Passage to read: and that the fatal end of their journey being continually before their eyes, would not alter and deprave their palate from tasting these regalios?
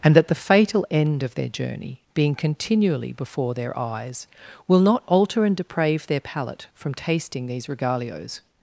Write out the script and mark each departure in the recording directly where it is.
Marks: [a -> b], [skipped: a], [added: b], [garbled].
and that the fatal end of their journey being continually before their eyes, [would -> will] not alter and deprave their palate from tasting these regalios?